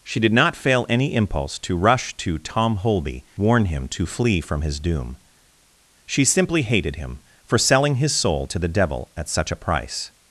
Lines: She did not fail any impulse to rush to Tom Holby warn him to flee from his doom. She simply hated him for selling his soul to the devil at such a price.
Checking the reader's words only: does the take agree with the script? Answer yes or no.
yes